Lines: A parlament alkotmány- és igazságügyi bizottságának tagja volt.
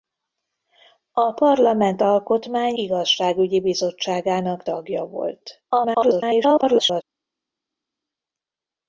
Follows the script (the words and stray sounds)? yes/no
no